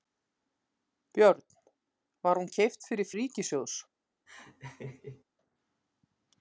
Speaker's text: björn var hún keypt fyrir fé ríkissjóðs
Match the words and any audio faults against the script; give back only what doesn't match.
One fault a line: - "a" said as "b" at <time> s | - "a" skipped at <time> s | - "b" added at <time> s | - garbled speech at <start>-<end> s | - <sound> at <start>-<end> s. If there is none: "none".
- "fé" skipped at 3.1 s
- laugh at 4.3-5.2 s